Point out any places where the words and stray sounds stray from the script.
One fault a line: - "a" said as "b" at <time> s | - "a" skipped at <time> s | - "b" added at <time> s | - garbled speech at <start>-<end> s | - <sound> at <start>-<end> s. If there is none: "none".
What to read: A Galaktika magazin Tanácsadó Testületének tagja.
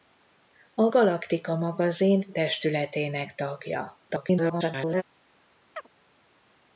- "Tanácsadó" skipped at 2.3 s
- garbled speech at 4.1-5.0 s
- chirp at 5.7-5.9 s